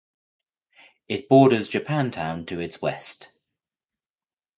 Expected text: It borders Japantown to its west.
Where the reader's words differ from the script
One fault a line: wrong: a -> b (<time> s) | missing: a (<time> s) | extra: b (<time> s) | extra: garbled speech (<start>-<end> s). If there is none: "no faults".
no faults